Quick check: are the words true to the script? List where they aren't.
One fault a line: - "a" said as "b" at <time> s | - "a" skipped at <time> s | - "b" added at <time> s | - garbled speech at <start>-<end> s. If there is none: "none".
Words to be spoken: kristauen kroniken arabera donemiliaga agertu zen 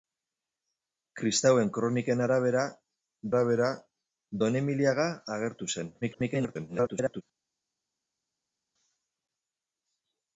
- "arabera" added at 3.3 s
- garbled speech at 6.0-7.2 s